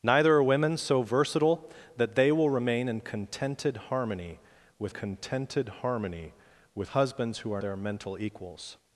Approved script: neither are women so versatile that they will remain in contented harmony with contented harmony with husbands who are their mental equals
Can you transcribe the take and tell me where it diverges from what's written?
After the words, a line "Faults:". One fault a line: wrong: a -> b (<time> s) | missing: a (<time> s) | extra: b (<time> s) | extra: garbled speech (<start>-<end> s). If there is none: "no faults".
neither are women so versatile that they will remain in contented harmony with contented harmony with husbands who are their mental equals
Faults:
no faults